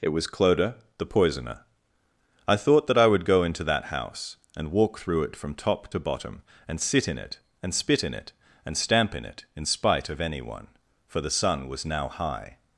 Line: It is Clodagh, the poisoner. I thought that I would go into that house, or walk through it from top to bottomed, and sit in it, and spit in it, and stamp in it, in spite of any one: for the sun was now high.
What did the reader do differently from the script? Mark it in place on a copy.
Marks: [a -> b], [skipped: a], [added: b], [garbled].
It [is -> was] Clodagh, the poisoner. I thought that I would go into that house, [or -> and] walk through it from top to [bottomed, -> bottom] and sit in it, and spit in it, and stamp in it, in spite of any one: for the sun was now high.